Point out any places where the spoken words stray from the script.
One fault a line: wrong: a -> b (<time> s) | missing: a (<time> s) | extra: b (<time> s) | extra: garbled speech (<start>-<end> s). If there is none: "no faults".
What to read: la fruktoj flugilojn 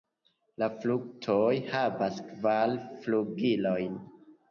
extra: havas kvar (1.7 s)